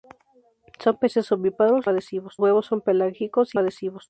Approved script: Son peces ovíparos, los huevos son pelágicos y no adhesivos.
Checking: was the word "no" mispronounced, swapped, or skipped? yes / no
yes